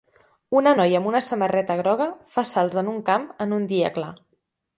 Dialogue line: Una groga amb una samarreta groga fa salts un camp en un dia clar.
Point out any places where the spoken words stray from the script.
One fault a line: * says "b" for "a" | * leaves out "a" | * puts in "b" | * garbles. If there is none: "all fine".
* says "noia" for "groga"
* puts in "en"